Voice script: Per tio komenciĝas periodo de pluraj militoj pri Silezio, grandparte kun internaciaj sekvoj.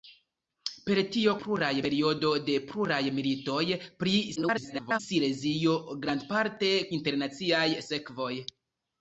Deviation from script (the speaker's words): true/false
true